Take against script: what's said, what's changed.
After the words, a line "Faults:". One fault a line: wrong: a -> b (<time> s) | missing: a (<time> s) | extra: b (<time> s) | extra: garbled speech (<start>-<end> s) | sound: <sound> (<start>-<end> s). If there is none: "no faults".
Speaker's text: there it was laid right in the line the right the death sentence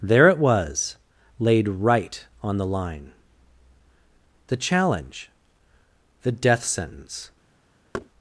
there it was laid right on the line the challenge the death sentence
Faults:
wrong: in -> on (2.4 s)
wrong: right -> challenge (4.5 s)
sound: thud (7.9-8.1 s)